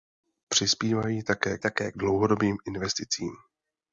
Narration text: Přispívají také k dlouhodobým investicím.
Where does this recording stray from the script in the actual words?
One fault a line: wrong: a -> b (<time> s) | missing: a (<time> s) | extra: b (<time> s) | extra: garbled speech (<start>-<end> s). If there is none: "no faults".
extra: také (1.6 s)